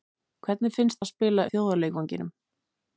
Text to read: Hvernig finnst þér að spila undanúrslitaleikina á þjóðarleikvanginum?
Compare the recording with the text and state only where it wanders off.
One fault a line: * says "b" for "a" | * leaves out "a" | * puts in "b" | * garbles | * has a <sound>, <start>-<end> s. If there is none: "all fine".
* leaves out "þér"
* leaves out "undanúrslitaleikina"